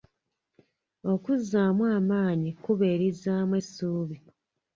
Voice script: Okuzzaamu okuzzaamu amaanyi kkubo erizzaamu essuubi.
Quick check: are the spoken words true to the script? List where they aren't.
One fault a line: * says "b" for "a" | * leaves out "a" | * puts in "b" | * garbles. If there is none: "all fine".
* leaves out "okuzzaamu"